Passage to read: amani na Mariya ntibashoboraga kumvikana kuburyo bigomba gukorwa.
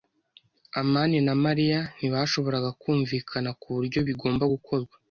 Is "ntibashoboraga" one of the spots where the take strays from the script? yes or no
no